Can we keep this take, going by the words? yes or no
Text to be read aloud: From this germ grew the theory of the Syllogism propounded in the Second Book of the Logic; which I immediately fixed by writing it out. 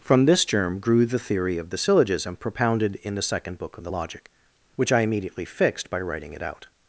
yes